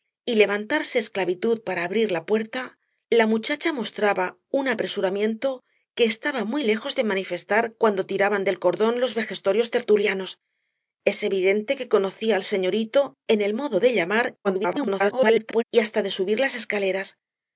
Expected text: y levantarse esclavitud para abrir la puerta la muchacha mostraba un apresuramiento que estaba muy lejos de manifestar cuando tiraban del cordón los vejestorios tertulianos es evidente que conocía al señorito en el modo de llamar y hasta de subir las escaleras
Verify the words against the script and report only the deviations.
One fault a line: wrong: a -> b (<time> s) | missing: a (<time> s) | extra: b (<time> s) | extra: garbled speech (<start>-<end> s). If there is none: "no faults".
extra: garbled speech (14.4-15.6 s)